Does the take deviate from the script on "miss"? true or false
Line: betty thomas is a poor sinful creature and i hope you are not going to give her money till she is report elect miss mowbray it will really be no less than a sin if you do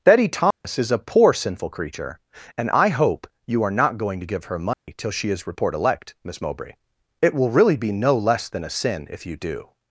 false